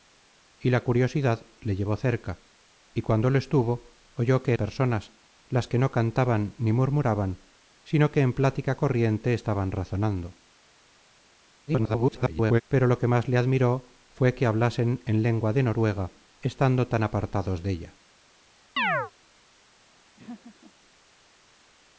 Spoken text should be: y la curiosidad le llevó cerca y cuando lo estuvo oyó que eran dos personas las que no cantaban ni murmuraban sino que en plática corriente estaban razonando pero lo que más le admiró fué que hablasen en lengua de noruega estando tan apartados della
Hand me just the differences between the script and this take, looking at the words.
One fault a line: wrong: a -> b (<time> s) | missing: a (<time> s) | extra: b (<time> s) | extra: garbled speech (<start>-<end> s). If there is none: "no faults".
missing: eran dos (4.5 s)
extra: garbled speech (11.7-12.6 s)